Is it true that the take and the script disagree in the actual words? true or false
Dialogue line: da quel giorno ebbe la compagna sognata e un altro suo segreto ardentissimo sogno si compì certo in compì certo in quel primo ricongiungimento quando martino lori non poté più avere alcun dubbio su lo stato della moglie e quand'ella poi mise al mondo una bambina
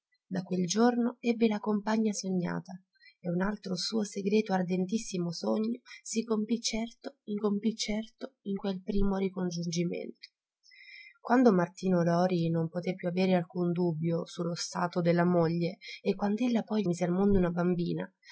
false